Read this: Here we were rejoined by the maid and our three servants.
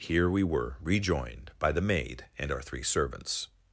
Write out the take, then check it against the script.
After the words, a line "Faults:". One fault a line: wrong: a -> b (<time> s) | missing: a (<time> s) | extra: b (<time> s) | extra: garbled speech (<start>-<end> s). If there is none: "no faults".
Here we were rejoined by the maid and our three servants.
Faults:
no faults